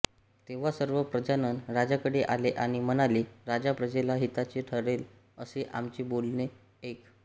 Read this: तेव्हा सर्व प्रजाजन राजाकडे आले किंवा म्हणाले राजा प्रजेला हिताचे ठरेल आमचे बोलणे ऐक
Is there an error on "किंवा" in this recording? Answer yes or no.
yes